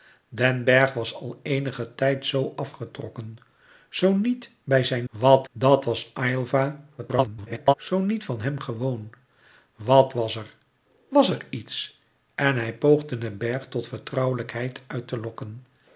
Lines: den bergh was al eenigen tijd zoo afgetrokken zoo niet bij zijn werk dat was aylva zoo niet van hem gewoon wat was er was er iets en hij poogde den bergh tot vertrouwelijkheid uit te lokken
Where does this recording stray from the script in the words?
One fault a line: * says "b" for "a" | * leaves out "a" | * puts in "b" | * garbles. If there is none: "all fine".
* says "wat" for "werk"
* garbles